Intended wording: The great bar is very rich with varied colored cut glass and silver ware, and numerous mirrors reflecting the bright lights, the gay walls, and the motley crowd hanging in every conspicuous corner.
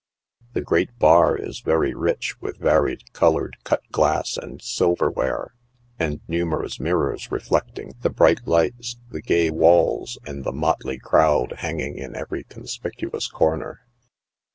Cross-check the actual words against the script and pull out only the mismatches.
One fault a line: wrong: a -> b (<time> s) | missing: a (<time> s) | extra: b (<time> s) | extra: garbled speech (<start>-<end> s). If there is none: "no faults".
no faults